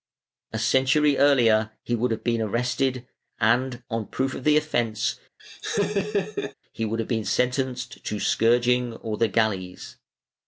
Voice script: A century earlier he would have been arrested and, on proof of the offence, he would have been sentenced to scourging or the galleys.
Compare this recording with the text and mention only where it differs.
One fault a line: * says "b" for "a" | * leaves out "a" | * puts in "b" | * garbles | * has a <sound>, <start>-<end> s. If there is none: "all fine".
* has a laugh, 5.4-6.5 s